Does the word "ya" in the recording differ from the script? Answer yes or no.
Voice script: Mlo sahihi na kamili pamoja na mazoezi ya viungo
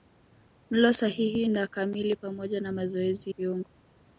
yes